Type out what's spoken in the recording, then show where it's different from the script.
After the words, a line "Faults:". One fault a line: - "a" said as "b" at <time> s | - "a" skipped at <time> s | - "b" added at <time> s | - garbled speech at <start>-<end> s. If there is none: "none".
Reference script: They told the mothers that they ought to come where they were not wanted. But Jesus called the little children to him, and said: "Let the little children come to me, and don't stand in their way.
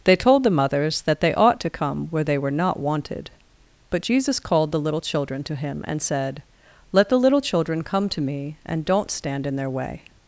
They told the mothers that they ought to come where they were not wanted. But Jesus called the little children to him, and said: "Let the little children come to me, and don't stand in their way.
Faults:
none